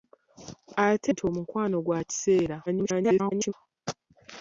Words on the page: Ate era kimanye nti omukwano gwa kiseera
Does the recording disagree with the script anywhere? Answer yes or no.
yes